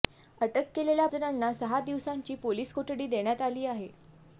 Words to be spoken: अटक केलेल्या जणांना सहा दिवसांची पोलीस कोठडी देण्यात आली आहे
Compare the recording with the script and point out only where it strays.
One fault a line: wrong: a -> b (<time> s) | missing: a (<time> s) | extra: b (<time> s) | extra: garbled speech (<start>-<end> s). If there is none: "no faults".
no faults